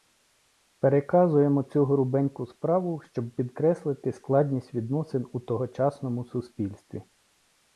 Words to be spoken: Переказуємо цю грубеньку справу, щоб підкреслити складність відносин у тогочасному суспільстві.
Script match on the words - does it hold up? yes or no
yes